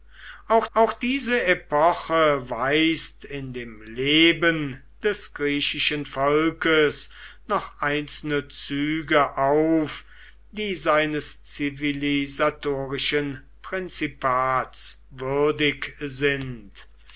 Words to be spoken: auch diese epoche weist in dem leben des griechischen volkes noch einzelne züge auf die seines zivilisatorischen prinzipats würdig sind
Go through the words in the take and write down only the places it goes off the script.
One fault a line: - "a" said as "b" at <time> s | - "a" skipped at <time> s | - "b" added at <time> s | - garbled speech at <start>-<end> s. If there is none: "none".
- "auch" added at 0.7 s